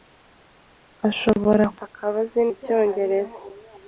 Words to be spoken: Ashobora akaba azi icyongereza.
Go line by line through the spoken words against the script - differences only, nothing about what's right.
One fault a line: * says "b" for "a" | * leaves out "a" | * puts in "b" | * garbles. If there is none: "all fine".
all fine